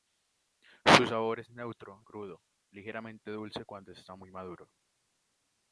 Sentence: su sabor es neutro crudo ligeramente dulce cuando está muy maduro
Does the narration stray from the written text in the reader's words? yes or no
no